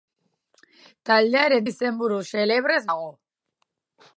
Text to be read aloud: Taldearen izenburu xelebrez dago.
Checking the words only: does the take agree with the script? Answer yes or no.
yes